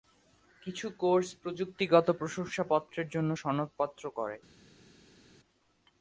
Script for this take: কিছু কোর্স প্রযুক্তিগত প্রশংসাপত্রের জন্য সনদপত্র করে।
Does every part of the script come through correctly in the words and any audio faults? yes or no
yes